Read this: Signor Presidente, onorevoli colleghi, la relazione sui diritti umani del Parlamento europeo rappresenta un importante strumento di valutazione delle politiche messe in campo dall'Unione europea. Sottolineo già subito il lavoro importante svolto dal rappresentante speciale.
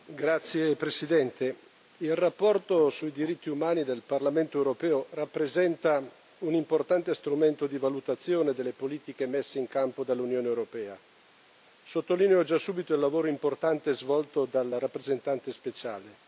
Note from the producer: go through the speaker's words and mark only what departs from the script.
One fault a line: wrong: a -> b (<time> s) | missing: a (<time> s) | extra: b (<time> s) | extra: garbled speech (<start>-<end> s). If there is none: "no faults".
no faults